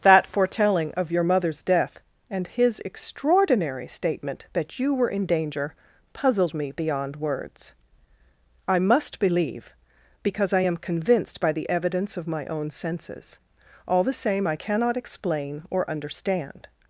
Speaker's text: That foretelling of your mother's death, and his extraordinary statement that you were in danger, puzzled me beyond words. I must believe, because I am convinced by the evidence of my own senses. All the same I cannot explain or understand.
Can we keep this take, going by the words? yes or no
yes